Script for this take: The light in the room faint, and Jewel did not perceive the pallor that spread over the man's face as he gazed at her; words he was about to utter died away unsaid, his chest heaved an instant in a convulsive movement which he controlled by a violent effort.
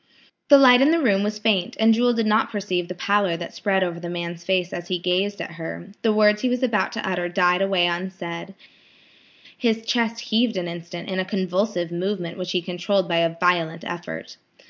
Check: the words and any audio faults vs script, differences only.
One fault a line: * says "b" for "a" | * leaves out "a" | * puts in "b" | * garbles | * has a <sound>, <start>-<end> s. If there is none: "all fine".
* puts in "was"
* puts in "the"